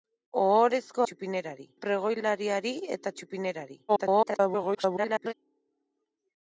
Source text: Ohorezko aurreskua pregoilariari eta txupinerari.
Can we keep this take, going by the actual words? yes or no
no